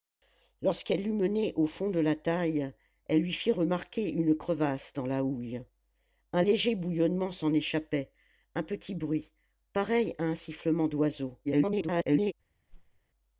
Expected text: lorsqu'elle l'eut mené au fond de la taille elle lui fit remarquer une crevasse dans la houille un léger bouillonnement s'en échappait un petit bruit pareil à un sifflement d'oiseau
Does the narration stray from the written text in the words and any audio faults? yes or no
yes